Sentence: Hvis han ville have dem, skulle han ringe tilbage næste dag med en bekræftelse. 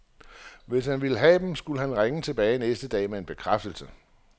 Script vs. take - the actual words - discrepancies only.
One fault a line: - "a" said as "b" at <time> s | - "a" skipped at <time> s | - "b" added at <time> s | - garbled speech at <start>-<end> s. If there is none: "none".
none